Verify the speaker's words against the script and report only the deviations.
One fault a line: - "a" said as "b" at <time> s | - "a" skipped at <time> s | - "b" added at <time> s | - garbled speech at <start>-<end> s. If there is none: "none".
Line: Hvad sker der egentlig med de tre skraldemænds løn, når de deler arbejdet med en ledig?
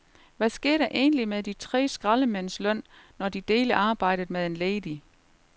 none